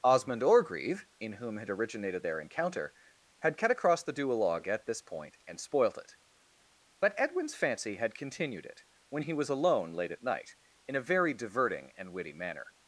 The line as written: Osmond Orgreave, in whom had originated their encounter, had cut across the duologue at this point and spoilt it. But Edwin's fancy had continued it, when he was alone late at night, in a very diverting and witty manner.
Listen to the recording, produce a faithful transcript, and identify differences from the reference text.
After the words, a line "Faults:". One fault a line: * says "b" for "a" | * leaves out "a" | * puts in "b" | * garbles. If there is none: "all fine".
Osmond Orgreave, in whom had originated their encounter, had cut across the duologue at this point and spoilt it. But Edwin's fancy had continued it, when he was alone late at night, in a very diverting and witty manner.
Faults:
all fine